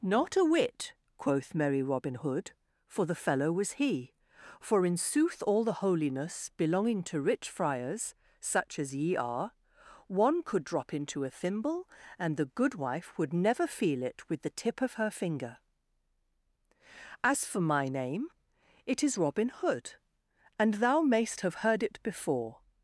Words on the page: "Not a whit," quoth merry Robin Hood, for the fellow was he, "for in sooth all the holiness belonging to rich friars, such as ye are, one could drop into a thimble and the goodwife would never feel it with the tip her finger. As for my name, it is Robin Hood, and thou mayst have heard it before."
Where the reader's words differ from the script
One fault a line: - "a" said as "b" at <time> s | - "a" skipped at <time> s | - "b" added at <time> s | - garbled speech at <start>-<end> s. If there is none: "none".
- "of" added at 14.8 s